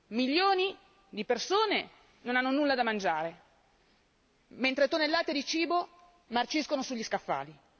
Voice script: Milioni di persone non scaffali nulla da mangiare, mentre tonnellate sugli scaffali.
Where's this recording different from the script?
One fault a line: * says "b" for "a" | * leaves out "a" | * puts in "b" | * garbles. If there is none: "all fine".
* says "hanno" for "scaffali"
* puts in "di cibo marciscono"